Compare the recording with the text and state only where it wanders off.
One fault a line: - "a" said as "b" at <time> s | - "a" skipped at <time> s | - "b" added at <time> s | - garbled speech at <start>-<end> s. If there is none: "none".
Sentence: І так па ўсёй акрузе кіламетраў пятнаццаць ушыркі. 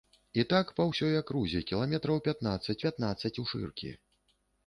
- "пятнаццаць" added at 2.9 s